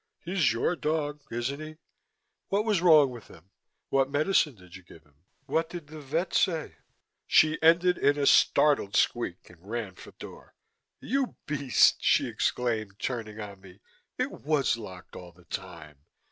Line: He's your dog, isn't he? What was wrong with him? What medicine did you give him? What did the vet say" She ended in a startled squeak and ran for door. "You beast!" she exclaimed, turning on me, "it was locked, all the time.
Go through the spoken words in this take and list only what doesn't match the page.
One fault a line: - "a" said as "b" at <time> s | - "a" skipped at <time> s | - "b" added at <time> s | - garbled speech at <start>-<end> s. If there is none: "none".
none